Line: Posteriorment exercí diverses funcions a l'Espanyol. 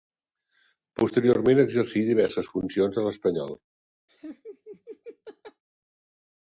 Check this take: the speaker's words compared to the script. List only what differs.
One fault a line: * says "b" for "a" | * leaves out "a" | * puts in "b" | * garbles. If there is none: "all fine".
all fine